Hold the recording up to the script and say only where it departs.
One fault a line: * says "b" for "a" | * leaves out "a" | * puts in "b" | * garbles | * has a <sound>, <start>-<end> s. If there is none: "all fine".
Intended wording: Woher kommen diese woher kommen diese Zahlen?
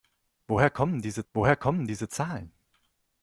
all fine